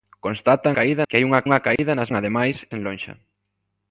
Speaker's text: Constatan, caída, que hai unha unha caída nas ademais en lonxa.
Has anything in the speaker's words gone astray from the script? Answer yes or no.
no